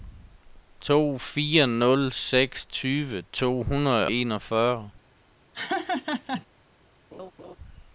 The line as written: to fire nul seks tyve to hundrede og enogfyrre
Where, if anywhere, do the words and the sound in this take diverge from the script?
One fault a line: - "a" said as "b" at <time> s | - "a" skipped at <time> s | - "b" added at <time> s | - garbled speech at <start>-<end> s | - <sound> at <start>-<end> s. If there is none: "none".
- "og" skipped at 4.1 s
- laugh at 5.5-6.5 s
- laugh at 7.1-7.6 s